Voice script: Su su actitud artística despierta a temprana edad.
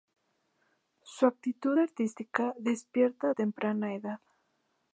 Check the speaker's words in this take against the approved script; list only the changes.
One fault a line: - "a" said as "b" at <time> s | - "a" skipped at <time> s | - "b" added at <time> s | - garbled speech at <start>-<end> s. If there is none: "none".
- "su" skipped at 1.3 s